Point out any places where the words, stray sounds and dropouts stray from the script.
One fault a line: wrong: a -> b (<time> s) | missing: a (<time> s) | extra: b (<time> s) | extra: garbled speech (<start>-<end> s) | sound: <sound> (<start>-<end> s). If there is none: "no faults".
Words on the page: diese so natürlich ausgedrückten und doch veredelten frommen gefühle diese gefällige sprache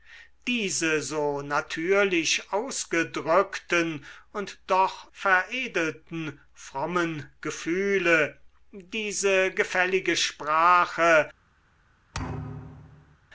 sound: thud (12.1-13.2 s)